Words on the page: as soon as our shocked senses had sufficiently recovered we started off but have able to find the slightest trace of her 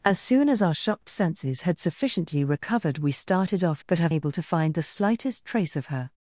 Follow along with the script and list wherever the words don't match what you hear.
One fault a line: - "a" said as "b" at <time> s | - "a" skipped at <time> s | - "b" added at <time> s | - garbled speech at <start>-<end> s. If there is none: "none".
none